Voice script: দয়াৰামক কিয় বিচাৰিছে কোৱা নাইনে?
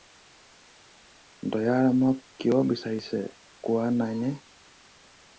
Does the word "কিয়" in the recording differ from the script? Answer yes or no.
no